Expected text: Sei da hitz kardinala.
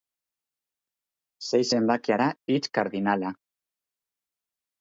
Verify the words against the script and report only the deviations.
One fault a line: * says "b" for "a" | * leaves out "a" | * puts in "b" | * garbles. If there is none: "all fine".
* puts in "zenbakia"